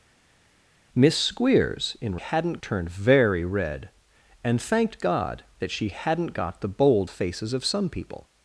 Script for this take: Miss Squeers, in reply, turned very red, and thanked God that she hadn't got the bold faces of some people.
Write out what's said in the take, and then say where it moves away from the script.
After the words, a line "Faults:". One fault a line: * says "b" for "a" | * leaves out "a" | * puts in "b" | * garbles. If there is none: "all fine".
Miss Squeers, in hadn't, turned very red, and thanked God that she hadn't got the bold faces of some people.
Faults:
* says "hadn't" for "reply"